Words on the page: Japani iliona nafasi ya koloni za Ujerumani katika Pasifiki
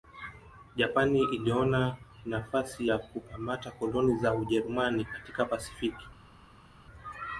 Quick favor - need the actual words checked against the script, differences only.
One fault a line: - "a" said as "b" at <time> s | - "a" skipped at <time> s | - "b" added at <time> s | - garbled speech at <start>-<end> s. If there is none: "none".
- "kukamata" added at 3.0 s